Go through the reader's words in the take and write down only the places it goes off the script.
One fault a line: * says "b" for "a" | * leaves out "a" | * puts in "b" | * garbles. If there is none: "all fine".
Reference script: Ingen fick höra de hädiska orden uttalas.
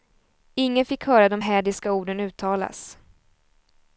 all fine